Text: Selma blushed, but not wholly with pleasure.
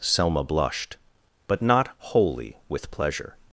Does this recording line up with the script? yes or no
yes